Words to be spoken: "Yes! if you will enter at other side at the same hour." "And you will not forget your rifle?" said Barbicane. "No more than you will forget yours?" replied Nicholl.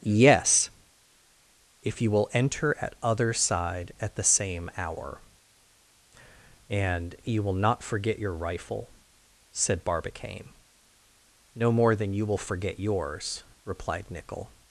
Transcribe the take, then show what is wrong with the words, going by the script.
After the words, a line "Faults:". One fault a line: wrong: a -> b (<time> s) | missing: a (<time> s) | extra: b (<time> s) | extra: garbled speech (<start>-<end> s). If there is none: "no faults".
"Yes! if you will enter at other side at the same hour." "And you will not forget your rifle?" said Barbicane. "No more than you will forget yours?" replied Nicholl.
Faults:
no faults